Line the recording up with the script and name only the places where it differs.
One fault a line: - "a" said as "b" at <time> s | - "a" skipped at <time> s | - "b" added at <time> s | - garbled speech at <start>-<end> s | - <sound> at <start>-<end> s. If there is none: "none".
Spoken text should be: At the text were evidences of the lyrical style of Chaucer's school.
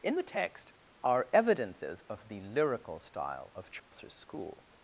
- "At" said as "In" at 0.0 s
- "were" said as "are" at 1.0 s
- dropout at 3.8-3.9 s